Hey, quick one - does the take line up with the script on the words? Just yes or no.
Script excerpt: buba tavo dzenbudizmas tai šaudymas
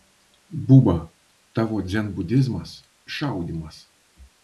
no